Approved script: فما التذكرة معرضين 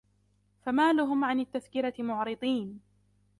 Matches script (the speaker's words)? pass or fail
fail